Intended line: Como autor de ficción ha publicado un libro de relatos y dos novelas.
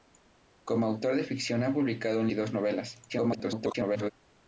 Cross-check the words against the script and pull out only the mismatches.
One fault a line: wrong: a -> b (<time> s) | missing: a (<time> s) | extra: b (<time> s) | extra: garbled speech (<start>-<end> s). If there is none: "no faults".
missing: libro de relatos (2.3 s)
extra: garbled speech (3.1-4.1 s)